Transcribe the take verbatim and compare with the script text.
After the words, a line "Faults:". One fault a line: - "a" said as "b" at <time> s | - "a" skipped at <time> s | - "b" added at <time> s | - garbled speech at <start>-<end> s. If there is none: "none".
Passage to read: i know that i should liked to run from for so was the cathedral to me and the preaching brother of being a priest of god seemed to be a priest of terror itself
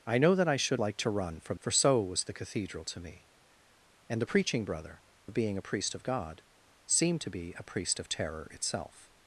i know that i should liked to run from for so was the cathedral to me and the preaching brother of being a priest of god seemed to be a priest of terror itself
Faults:
none